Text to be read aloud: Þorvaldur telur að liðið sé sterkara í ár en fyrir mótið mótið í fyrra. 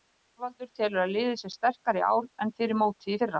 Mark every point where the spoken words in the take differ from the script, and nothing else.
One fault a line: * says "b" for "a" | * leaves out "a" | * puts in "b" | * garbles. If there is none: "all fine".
* leaves out "mótið"